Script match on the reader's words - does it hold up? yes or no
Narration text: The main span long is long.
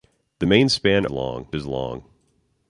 yes